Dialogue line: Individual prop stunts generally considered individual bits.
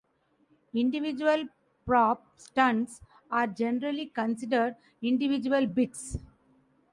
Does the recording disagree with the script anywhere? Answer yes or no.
yes